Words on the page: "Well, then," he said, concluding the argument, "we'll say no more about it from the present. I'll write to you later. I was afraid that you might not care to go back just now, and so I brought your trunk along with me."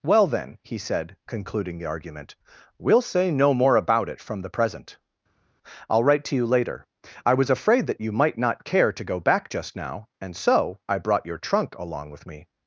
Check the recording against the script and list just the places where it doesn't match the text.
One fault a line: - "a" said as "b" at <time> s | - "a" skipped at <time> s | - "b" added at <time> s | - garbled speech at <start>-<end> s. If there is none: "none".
none